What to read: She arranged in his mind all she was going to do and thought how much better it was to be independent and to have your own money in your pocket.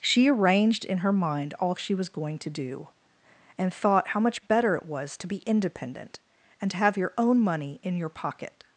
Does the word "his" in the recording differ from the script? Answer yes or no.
yes